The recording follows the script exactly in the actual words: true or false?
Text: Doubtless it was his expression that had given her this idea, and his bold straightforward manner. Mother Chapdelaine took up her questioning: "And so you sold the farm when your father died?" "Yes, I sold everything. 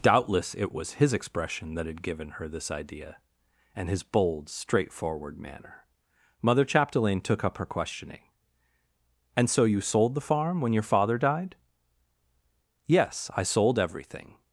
true